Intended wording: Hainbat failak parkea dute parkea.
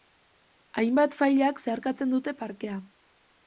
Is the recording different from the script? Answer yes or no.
yes